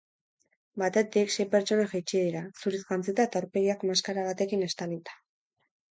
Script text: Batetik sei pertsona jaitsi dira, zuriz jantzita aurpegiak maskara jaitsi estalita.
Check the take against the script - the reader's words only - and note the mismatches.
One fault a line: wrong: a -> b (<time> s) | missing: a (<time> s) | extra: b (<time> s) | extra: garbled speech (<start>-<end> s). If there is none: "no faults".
extra: eta (3.3 s)
wrong: jaitsi -> batekin (4.3 s)